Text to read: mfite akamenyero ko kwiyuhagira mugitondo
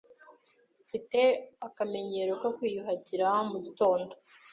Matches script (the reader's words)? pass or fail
pass